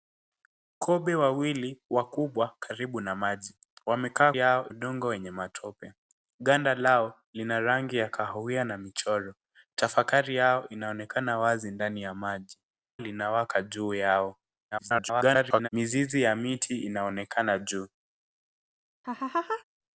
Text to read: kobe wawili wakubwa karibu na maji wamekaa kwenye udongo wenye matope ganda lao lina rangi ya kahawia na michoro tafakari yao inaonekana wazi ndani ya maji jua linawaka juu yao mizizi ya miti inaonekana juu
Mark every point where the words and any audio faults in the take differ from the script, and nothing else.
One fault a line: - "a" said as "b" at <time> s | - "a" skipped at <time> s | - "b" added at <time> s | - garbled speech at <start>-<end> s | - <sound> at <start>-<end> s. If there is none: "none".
- "kwenye" said as "yao" at 4.4 s
- "jua" skipped at 12.6 s
- garbled speech at 14.7-15.7 s
- laugh at 19.0-19.6 s